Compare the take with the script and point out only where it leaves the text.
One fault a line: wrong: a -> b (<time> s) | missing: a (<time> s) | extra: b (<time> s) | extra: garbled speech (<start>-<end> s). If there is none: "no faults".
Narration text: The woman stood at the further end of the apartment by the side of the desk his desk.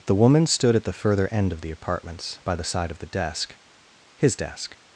wrong: apartment -> apartments (1.7 s)